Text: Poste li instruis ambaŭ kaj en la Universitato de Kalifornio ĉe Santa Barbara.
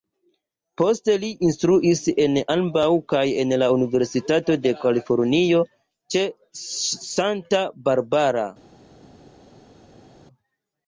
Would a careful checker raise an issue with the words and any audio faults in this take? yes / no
yes